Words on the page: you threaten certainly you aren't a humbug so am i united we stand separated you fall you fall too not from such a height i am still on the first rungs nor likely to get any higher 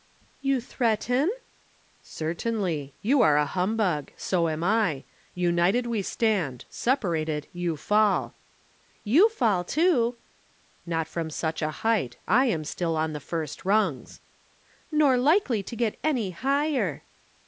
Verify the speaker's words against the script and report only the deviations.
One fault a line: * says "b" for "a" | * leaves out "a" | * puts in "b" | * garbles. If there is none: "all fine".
* says "are" for "aren't"